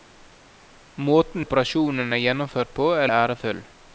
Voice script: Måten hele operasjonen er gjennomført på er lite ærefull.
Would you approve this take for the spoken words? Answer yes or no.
no